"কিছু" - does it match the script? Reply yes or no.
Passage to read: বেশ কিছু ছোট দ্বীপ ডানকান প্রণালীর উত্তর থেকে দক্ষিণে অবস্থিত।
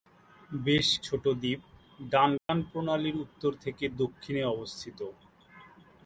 no